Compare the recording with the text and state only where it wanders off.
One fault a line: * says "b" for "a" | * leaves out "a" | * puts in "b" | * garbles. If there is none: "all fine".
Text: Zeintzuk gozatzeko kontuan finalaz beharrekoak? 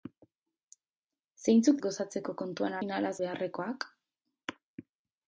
all fine